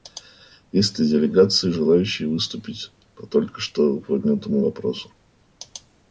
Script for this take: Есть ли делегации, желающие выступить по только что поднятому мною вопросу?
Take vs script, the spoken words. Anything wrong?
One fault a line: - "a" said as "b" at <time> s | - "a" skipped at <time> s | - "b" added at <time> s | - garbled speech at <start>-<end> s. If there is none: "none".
- "мною" skipped at 4.6 s